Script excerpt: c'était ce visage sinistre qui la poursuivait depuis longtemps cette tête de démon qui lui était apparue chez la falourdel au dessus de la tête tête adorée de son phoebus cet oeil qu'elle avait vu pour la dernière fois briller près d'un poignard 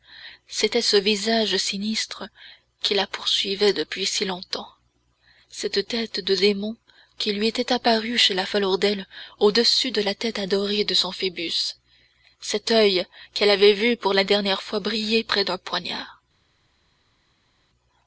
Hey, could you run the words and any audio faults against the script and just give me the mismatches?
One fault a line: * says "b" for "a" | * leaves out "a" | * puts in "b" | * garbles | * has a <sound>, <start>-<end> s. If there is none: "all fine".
* puts in "si"
* leaves out "tête"